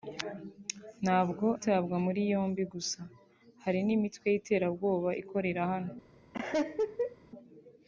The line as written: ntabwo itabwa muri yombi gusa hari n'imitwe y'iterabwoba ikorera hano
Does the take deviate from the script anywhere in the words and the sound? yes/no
yes